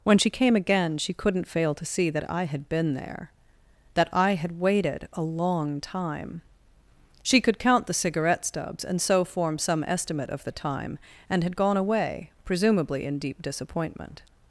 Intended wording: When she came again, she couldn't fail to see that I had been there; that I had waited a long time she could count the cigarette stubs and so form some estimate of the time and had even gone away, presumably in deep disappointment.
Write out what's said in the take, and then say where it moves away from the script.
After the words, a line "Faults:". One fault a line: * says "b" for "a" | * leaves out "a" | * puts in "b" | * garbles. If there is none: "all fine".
When she came again, she couldn't fail to see that I had been there; that I had waited a long time she could count the cigarette stubs and so form some estimate of the time and had gone away, presumably in deep disappointment.
Faults:
* leaves out "even"